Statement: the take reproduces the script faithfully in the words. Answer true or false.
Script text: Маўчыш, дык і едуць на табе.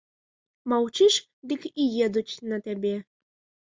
true